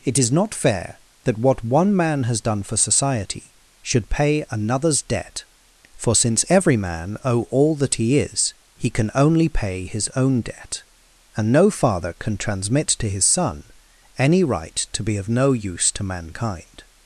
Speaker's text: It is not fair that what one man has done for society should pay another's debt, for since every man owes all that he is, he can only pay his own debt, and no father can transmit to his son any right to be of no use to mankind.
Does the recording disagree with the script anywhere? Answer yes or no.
yes